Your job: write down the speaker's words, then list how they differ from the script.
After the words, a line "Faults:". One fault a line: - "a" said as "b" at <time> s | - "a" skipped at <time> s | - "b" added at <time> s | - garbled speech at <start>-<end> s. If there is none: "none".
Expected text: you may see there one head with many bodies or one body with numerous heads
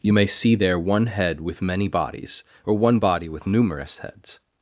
you may see there one head with many bodies or one body with numerous heads
Faults:
none